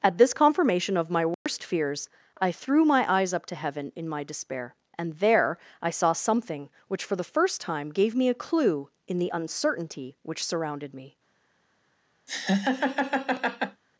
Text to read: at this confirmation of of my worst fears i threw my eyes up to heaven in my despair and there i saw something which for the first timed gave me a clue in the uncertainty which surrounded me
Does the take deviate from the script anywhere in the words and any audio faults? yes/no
yes